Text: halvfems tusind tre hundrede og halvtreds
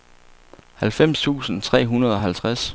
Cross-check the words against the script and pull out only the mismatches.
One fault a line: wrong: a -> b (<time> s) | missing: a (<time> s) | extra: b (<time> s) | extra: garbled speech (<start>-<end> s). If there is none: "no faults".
no faults